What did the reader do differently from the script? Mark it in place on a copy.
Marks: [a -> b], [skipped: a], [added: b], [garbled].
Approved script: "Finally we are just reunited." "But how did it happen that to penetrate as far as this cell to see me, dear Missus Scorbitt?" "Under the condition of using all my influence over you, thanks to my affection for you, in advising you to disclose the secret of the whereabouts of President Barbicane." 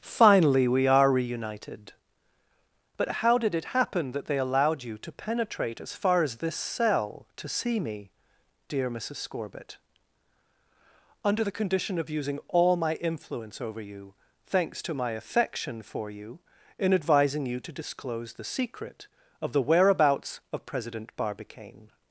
"Finally we are [skipped: just] reunited." "But how did it happen that [added: they allowed you] to penetrate as far as this cell to see me, dear Missus Scorbitt?" "Under the condition of using all my influence over you, thanks to my affection for you, in advising you to disclose the secret of the whereabouts of President Barbicane."